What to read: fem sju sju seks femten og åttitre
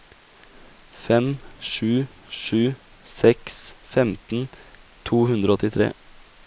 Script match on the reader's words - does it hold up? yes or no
no